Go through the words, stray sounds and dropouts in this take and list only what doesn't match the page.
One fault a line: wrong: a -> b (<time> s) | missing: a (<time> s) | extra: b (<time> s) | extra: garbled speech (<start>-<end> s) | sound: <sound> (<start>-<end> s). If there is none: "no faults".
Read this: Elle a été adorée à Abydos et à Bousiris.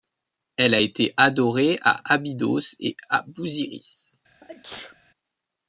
sound: sneeze (4.4-4.9 s)